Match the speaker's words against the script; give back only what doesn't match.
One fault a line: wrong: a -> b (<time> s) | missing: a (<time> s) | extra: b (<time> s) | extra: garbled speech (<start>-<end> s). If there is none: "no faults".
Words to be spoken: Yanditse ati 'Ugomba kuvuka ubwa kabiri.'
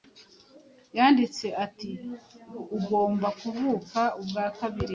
no faults